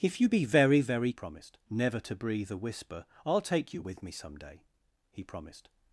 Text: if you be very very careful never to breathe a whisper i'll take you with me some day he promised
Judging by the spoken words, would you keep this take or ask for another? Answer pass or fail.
fail